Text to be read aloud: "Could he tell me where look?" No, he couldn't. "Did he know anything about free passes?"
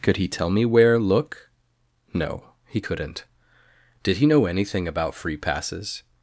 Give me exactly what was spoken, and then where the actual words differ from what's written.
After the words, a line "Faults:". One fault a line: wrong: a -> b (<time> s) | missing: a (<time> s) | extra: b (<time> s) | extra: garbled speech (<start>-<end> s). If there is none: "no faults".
"Could he tell me where look?" No, he couldn't. "Did he know anything about free passes?"
Faults:
no faults